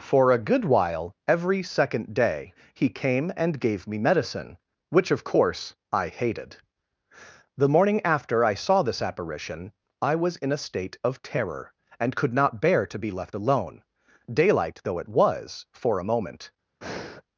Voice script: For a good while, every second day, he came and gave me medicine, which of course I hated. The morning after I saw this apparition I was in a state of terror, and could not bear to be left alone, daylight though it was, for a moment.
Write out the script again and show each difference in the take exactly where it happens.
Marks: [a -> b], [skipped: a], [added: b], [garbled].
For a good while, every second day, he came and gave me medicine, which of course I hated. The morning after I saw this apparition I was in a state of terror, and could not bear to be left alone, daylight though it was, for a moment.